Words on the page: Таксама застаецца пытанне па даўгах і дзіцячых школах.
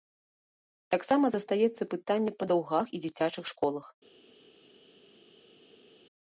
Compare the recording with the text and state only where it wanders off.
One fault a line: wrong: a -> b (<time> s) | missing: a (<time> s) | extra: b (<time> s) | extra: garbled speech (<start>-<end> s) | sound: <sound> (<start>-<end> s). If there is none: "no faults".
no faults